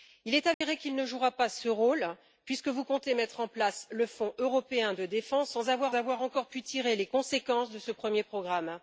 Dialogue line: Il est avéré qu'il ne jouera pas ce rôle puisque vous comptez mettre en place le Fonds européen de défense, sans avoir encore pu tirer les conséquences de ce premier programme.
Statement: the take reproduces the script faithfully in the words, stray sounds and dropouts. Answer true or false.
false